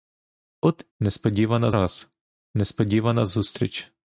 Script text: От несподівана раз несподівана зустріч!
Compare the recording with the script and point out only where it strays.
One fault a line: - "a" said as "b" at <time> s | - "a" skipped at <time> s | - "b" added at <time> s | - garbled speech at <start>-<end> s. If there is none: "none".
none